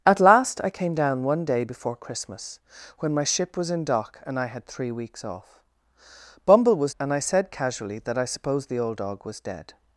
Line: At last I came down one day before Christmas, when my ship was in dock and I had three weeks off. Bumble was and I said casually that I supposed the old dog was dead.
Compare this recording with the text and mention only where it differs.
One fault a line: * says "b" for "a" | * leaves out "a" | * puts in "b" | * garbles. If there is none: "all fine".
all fine